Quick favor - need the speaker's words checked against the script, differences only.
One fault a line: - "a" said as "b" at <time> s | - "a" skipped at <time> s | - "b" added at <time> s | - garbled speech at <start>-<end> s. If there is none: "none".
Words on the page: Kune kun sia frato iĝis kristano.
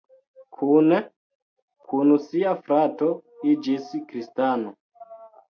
none